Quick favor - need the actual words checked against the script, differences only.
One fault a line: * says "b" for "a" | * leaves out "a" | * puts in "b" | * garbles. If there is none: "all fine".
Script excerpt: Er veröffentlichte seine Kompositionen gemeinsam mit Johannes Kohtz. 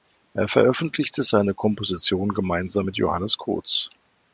all fine